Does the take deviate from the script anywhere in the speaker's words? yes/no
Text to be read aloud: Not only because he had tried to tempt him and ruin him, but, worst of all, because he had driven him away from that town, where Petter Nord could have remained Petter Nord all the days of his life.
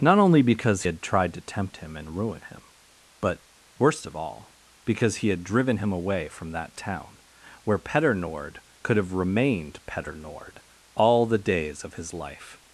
yes